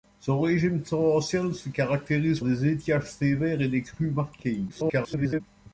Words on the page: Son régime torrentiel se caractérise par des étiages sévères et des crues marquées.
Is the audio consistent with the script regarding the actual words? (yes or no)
no